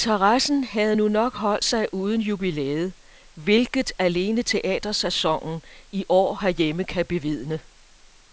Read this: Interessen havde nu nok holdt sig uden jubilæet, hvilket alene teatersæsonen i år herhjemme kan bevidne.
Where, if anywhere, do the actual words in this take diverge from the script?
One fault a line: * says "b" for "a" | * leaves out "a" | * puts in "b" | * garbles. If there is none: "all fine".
all fine